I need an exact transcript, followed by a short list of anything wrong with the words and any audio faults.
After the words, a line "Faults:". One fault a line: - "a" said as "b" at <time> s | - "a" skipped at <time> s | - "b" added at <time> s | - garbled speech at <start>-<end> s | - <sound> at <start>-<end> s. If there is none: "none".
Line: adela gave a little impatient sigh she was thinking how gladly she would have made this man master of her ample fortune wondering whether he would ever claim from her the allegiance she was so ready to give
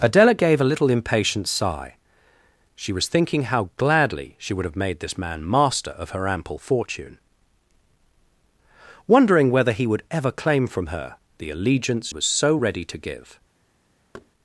adela gave a little impatient sigh she was thinking how gladly she would have made this man master of her ample fortune wondering whether he would ever claim from her the allegiance was so ready to give
Faults:
- "she" skipped at 12.1 s
- thud at 14.1-14.3 s